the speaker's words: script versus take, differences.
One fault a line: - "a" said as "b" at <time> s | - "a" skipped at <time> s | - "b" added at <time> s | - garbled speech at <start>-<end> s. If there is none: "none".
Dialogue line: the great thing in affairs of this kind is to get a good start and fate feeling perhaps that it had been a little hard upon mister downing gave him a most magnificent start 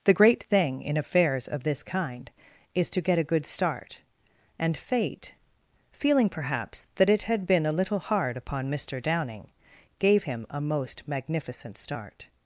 none